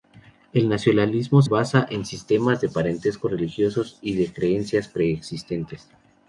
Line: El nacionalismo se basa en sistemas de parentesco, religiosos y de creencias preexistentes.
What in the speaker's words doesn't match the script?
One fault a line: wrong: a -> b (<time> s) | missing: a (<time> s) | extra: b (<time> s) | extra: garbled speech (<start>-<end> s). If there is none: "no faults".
missing: se (1.4 s)